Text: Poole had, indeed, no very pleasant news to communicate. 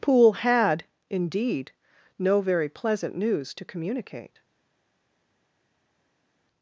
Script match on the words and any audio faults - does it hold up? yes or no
yes